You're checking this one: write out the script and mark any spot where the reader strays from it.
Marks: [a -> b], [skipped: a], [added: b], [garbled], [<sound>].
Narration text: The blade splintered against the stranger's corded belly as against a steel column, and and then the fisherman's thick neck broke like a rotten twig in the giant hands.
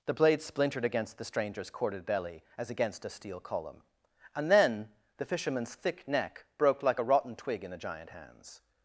The blade splintered against the stranger's corded belly as against a steel column, and [skipped: and] then the fisherman's thick neck broke like a rotten twig in the giant hands.